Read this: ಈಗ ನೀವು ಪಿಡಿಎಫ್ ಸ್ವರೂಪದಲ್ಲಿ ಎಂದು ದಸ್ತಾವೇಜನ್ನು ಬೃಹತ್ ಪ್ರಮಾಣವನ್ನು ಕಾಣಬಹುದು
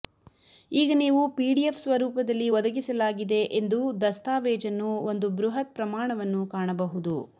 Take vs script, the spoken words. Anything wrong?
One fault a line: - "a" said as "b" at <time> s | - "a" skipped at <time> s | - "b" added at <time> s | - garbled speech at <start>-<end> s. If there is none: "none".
- "ಒದಗಿಸಲಾಗಿದೆ" added at 2.5 s
- "ಒಂದು" added at 5.1 s